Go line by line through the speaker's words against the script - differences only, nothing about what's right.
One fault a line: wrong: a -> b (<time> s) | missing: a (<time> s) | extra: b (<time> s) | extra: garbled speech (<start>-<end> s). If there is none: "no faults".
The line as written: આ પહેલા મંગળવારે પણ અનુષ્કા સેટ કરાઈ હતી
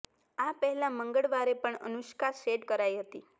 no faults